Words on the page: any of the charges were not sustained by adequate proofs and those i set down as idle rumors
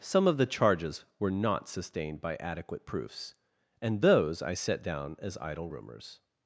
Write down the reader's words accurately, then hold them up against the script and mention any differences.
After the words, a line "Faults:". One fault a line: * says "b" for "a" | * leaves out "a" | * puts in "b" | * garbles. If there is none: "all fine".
some of the charges were not sustained by adequate proofs and those i set down as idle rumors
Faults:
* says "some" for "any"